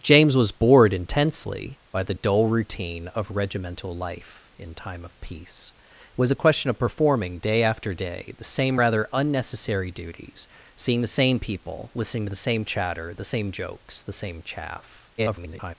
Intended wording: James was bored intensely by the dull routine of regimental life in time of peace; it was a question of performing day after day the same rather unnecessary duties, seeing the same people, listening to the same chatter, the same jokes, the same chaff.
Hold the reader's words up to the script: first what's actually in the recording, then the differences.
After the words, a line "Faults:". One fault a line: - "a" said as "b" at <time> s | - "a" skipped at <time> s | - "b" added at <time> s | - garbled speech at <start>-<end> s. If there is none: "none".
James was bored intensely by the dull routine of regimental life in time of peace; it was a question of performing day after day the same rather unnecessary duties, seeing the same people, listening to the same chatter, the same jokes, the same chaff. [garbled]
Faults:
- garbled speech at 15.2-15.7 s